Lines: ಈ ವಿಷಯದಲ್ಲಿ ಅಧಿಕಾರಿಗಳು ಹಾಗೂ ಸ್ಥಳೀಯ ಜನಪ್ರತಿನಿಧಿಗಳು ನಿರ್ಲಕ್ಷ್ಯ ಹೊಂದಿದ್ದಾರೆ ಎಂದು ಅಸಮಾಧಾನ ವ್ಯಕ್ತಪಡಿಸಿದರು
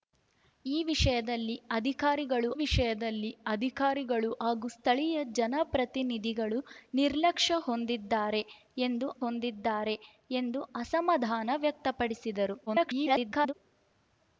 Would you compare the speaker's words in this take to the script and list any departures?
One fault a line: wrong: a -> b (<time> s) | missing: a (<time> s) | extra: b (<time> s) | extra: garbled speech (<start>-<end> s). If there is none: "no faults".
extra: ವಿಷಯದಲ್ಲಿ ಅಧಿಕಾರಿಗಳು (2.5 s)
extra: ಹೊಂದಿದ್ದಾರೆ ಎಂದು (9.2 s)
extra: garbled speech (12.7-13.5 s)